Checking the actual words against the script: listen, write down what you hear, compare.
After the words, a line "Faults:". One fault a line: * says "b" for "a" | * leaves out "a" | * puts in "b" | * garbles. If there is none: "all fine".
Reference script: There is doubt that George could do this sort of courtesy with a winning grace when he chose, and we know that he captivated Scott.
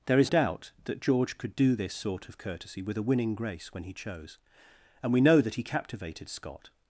There is doubt that George could do this sort of courtesy with a winning grace when he chose, and we know that he captivated Scott.
Faults:
all fine